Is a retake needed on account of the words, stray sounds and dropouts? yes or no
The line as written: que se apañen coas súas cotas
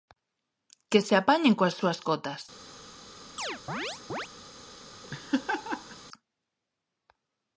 yes